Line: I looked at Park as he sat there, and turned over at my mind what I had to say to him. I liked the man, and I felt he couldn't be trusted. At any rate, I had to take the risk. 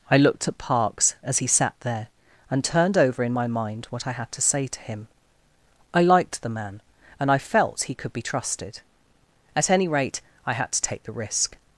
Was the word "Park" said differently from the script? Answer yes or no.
yes